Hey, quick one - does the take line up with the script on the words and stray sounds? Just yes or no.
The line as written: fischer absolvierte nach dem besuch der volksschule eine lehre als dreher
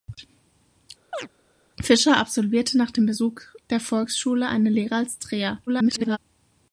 no